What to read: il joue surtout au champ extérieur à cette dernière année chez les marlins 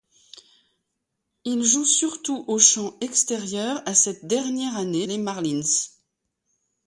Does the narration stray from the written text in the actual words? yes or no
yes